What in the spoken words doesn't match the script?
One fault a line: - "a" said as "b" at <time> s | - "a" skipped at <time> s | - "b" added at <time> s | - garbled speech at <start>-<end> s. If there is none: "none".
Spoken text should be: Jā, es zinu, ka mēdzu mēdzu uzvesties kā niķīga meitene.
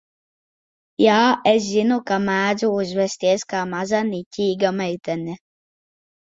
- "mēdzu" skipped at 2.7 s
- "maza" added at 3.8 s